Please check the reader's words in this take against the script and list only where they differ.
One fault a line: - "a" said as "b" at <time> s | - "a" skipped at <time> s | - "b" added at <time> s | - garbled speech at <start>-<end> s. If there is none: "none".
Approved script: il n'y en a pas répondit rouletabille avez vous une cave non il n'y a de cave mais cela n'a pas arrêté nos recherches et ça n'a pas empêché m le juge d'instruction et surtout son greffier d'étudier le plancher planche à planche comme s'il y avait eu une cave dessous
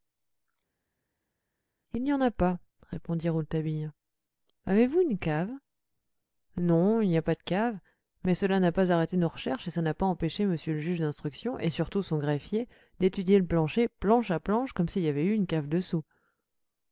- "pas" added at 7.2 s